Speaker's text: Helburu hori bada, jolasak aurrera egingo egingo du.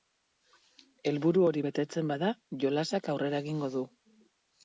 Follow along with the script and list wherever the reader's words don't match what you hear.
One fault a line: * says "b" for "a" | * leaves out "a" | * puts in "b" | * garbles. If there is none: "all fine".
* puts in "betetzen"
* leaves out "egingo"